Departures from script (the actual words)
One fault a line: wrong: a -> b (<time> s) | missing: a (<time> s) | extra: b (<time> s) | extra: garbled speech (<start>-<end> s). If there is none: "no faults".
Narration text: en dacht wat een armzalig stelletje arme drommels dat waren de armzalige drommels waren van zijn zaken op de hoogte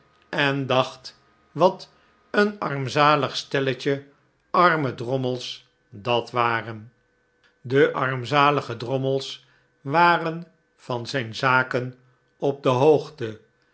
no faults